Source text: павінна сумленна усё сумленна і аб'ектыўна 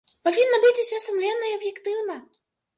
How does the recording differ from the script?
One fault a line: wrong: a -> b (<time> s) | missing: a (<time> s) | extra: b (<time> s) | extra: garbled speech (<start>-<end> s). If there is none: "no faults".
wrong: сумленна -> быць (0.7 s)